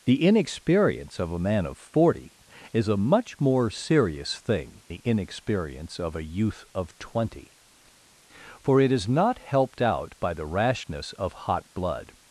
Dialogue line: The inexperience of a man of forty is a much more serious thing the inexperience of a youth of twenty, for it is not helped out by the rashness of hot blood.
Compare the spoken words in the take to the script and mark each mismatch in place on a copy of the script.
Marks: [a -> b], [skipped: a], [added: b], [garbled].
The inexperience of a man of forty is a much more serious thing the inexperience of a youth of twenty, for it is not helped out by the rashness of hot blood.